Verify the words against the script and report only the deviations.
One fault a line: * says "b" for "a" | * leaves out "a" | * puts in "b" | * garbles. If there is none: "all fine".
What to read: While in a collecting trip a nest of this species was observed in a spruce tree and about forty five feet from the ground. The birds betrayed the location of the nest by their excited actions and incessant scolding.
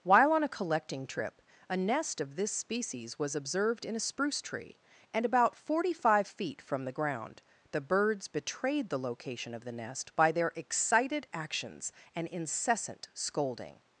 * says "on" for "in"